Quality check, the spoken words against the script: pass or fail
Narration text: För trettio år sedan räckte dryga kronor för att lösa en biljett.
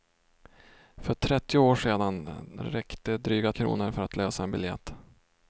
pass